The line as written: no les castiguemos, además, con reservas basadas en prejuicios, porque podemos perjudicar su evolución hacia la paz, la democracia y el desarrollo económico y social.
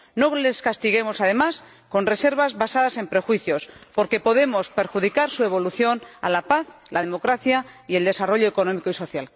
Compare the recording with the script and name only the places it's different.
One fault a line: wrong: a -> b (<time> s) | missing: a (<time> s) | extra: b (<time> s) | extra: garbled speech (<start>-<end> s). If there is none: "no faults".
no faults